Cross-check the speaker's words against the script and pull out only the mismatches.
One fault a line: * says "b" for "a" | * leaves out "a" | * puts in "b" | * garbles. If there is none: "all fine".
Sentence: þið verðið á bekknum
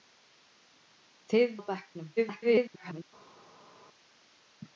* leaves out "verðið"
* garbles